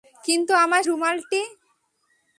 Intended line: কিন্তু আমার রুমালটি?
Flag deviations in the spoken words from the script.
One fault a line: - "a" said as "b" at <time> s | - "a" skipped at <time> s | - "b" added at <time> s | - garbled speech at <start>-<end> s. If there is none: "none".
none